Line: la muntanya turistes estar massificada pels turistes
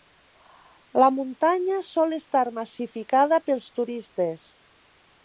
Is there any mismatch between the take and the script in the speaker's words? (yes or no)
yes